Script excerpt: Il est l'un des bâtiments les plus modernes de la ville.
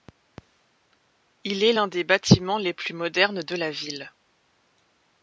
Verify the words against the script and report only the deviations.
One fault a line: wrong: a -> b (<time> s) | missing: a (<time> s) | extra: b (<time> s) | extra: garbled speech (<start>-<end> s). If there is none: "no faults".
no faults